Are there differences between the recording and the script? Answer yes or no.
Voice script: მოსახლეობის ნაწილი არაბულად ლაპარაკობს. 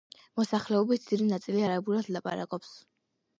yes